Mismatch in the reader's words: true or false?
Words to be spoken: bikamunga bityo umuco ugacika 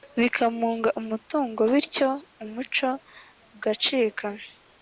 true